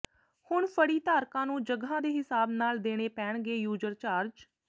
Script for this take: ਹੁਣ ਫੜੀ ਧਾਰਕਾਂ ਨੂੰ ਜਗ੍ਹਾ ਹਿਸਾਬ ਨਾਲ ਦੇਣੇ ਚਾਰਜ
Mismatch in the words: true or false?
true